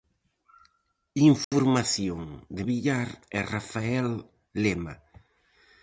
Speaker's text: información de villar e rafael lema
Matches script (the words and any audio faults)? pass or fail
fail